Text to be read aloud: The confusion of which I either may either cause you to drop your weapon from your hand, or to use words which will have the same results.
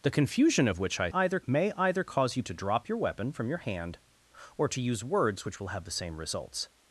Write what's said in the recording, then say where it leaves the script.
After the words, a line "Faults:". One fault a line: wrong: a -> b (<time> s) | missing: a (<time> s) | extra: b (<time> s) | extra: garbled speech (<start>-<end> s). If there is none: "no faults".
The confusion of which I either may either cause you to drop your weapon from your hand, or to use words which will have the same results.
Faults:
no faults